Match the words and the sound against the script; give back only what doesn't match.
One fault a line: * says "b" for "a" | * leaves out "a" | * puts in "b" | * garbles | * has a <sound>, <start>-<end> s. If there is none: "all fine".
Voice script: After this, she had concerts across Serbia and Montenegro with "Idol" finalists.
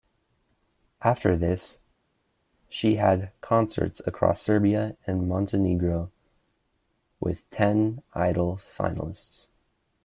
* puts in "ten"